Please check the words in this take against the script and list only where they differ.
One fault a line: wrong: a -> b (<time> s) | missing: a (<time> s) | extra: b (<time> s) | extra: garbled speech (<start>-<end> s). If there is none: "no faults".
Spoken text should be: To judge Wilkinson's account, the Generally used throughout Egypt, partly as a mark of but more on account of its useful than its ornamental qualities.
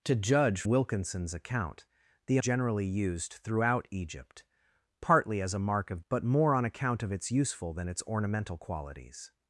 no faults